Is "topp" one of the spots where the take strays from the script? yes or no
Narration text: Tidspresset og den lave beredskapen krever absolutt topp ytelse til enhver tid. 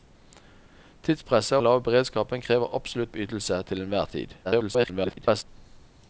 yes